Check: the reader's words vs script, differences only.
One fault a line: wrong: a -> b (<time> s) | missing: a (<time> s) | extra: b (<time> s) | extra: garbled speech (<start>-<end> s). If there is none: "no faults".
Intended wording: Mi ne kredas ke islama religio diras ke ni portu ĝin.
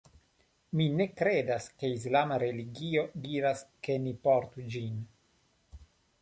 no faults